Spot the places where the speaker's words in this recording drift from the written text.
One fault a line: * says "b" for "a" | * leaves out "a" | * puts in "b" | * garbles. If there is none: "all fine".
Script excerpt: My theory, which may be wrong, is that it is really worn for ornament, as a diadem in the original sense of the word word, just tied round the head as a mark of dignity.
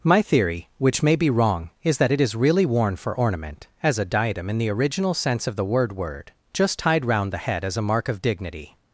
all fine